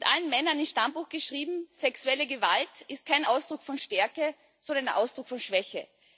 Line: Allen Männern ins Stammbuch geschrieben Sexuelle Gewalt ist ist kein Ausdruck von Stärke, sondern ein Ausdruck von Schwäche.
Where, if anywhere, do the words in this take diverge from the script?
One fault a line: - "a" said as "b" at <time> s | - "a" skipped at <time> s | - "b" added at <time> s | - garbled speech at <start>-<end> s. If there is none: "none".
- "ist" skipped at 3.0 s